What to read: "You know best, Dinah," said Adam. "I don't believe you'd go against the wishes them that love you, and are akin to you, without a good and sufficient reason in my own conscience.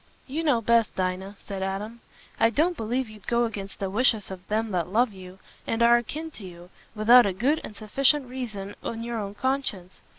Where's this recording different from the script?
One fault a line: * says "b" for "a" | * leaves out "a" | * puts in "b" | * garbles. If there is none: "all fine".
* puts in "of"
* says "your" for "my"